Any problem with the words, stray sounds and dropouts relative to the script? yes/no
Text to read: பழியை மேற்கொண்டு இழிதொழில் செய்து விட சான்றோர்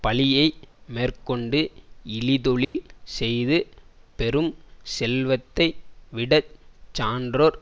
yes